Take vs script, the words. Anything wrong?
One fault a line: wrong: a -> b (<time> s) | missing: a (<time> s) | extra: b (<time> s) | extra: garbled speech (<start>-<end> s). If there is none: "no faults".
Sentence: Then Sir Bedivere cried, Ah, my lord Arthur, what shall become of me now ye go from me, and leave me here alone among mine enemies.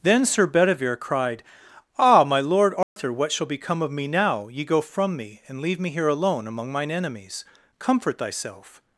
extra: Comfort thyself (7.8 s)